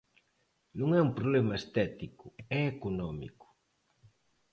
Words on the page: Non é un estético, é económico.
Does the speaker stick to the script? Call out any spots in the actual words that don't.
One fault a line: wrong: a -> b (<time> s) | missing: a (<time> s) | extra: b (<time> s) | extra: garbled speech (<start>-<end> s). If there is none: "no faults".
extra: problema (1.2 s)